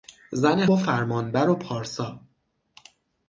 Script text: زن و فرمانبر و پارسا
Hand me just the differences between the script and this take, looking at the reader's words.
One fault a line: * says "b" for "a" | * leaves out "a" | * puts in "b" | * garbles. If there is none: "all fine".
all fine